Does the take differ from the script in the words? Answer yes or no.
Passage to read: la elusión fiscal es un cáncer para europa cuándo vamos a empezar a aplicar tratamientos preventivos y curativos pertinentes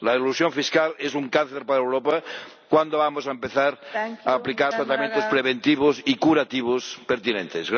no